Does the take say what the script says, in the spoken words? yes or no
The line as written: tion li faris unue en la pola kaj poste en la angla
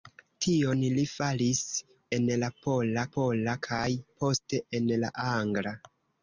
no